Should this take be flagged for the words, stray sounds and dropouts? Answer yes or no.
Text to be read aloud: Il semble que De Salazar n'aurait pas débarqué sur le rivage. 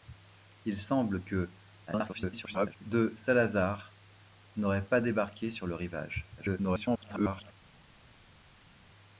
yes